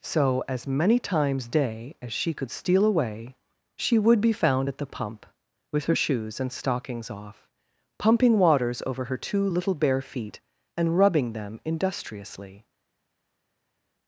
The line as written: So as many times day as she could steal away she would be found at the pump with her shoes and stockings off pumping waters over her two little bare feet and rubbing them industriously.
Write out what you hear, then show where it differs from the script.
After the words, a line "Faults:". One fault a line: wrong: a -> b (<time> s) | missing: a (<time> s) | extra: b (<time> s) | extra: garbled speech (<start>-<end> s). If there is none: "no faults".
So as many times day as she could steal away she would be found at the pump with her shoes and stockings off pumping waters over her two little bare feet and rubbing them industriously.
Faults:
no faults